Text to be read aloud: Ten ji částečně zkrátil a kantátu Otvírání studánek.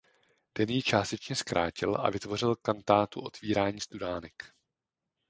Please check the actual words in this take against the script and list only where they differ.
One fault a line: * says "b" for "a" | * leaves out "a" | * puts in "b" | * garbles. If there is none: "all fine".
* puts in "vytvořil"